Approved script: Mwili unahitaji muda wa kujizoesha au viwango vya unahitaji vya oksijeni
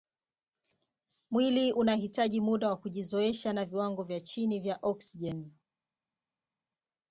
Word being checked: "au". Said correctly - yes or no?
no